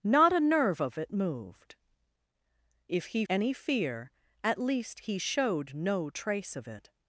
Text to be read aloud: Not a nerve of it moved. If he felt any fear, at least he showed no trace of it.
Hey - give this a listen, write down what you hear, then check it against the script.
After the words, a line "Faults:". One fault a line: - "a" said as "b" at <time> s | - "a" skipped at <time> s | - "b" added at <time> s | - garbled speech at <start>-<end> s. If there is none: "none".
Not a nerve of it moved. If he any fear, at least he showed no trace of it.
Faults:
- "felt" skipped at 3.2 s